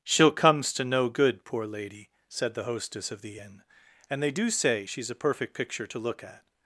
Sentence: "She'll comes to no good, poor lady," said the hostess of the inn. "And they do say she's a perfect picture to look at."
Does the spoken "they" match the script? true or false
true